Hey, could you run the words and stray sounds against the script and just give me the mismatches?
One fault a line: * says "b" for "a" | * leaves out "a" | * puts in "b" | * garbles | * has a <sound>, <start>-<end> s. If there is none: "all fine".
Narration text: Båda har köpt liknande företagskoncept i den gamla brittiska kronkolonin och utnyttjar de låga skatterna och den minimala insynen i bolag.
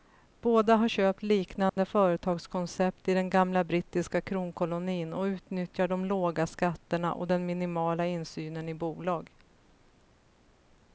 * has a dropout, 1.7-1.8 s